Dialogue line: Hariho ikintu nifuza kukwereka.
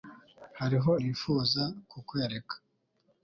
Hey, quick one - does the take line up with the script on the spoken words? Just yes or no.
no